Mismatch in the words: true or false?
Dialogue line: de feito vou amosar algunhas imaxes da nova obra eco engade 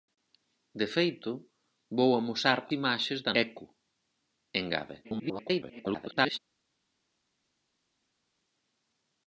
true